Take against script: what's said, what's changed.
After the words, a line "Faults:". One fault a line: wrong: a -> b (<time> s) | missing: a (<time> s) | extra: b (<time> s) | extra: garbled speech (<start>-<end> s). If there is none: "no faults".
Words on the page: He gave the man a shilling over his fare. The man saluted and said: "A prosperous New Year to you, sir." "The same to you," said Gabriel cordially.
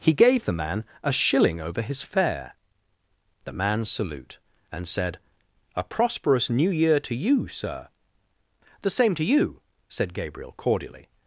He gave the man a shilling over his fare. The man salute and said: "A prosperous New Year to you, sir." "The same to you," said Gabriel cordially.
Faults:
wrong: saluted -> salute (3.8 s)